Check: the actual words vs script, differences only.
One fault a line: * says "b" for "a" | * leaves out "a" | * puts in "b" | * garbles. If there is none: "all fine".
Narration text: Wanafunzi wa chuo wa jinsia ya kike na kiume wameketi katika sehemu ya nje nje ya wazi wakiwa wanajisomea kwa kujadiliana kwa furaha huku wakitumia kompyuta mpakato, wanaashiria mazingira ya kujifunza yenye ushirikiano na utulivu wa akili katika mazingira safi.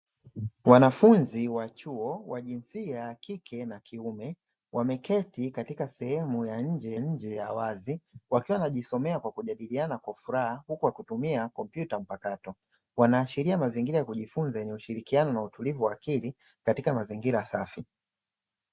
all fine